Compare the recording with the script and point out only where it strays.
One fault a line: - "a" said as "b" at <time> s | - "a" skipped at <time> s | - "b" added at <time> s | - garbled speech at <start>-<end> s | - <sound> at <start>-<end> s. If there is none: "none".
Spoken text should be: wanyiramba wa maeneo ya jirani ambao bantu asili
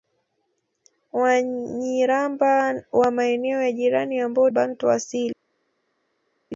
none